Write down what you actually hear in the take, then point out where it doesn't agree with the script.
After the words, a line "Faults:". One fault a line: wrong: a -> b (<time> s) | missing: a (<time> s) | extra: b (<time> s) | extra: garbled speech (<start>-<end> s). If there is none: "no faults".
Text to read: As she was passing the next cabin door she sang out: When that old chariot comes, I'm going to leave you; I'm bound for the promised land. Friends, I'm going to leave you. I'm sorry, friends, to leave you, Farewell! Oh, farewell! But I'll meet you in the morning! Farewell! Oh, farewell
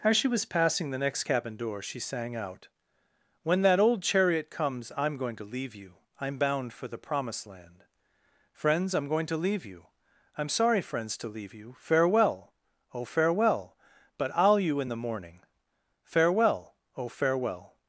As she was passing the next cabin door she sang out: When that old chariot comes, I'm going to leave you; I'm bound for the promised land. Friends, I'm going to leave you. I'm sorry, friends, to leave you, Farewell! Oh, farewell! But I'll you in the morning! Farewell! Oh, farewell
Faults:
missing: meet (14.6 s)